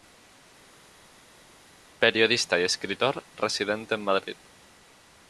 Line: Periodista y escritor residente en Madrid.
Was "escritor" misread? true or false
false